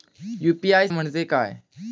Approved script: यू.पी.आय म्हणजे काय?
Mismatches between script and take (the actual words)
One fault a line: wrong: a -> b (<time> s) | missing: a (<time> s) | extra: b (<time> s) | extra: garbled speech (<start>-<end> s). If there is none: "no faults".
no faults